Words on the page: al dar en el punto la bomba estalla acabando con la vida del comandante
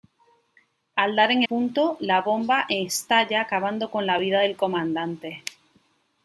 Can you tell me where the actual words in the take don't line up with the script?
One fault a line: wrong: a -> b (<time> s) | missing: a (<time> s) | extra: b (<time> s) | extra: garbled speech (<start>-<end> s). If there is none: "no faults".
missing: el (1.4 s)